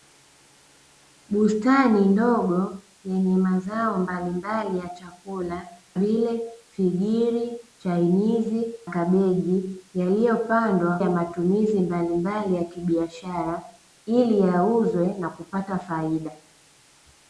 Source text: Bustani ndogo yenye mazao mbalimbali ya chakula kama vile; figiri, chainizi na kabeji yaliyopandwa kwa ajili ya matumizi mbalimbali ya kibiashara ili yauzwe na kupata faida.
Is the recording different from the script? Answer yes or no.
yes